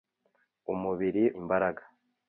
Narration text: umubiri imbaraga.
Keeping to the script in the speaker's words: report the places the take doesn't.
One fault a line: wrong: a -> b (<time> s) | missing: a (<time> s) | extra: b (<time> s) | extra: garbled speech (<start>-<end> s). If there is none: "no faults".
no faults